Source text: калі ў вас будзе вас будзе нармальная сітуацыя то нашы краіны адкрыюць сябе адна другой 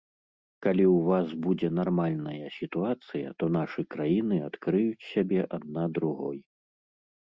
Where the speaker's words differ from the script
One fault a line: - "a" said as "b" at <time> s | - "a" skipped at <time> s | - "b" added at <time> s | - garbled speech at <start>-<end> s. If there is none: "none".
- "вас будзе" skipped at 1.7 s